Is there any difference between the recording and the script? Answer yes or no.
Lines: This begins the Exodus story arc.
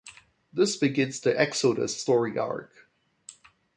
no